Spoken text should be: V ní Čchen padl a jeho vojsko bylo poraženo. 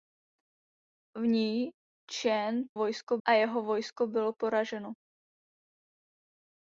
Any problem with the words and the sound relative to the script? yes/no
yes